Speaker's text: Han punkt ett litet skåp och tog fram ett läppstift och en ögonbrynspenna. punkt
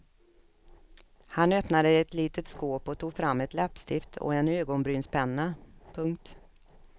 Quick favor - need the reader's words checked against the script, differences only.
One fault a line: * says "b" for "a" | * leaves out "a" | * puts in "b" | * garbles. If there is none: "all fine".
* says "öppnade" for "punkt"